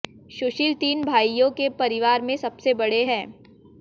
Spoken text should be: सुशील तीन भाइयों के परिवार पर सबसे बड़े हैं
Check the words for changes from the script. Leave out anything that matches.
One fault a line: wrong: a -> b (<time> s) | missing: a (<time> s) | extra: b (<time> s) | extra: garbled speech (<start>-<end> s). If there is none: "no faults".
wrong: पर -> में (2.2 s)